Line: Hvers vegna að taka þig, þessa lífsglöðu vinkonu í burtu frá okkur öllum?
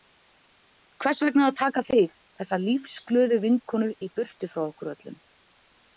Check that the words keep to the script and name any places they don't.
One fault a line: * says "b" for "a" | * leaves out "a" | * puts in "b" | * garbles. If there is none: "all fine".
all fine